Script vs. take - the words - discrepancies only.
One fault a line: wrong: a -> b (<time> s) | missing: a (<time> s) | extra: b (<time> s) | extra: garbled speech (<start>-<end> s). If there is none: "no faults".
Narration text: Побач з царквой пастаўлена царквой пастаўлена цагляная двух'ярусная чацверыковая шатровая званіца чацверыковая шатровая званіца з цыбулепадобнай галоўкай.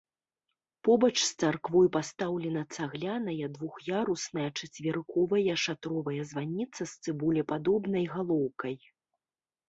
missing: царквой пастаўлена (2.6 s)
missing: чацверыковая шатровая званіца (6.8 s)